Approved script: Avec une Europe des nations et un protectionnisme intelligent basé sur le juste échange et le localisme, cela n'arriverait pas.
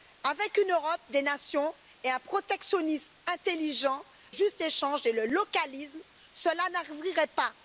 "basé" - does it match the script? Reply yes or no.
no